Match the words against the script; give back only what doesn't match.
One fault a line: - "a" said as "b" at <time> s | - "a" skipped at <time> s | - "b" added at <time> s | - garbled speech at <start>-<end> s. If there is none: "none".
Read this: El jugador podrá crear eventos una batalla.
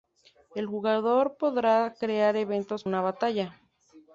none